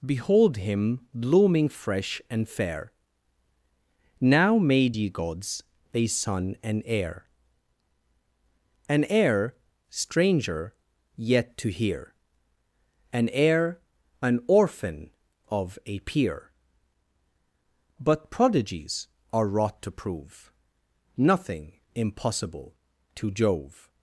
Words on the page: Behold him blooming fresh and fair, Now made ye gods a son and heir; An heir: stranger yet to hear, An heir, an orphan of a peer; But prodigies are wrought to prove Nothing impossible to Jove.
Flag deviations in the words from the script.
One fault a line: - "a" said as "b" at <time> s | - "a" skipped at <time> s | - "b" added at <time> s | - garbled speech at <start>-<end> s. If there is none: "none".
none